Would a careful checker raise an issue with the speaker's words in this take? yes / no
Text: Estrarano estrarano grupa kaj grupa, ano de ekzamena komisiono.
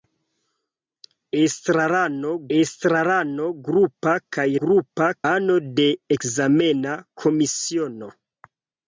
no